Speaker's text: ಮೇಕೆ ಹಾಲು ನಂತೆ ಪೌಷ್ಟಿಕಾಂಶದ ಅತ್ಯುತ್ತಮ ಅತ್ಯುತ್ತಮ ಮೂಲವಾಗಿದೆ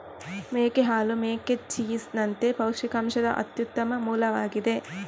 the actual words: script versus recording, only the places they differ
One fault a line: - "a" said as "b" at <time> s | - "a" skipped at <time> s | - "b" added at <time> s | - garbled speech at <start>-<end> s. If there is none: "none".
- "ಮೇಕೆ ಚೀಸ್" added at 1.2 s
- "ಅತ್ಯುತ್ತಮ" skipped at 4.0 s